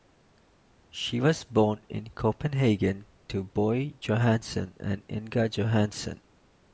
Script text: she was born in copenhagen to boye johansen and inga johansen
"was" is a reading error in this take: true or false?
false